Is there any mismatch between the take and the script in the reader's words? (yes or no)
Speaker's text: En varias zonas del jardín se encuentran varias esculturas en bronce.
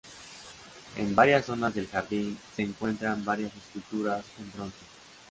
no